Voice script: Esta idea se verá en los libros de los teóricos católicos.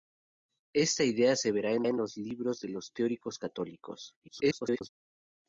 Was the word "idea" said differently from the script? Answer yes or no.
no